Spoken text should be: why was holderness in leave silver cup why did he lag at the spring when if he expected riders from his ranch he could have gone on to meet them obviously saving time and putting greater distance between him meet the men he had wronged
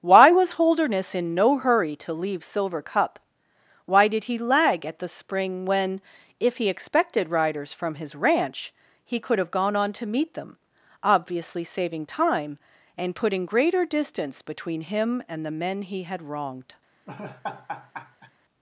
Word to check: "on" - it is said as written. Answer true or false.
true